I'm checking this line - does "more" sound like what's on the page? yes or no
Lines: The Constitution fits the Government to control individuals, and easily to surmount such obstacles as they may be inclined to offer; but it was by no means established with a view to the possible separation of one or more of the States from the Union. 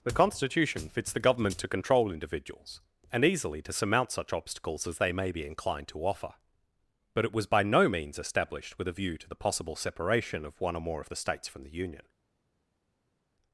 yes